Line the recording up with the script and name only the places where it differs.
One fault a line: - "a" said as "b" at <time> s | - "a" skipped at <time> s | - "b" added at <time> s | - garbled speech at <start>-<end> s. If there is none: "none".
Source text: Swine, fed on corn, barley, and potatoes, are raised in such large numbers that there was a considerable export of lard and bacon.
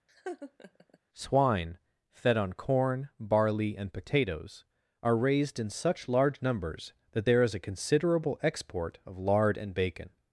- "was" said as "is" at 7.4 s